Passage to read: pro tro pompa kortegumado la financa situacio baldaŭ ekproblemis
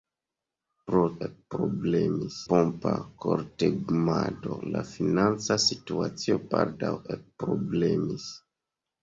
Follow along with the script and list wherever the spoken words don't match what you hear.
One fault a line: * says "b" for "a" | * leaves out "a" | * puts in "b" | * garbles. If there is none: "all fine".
* says "ekproblemis" for "tro"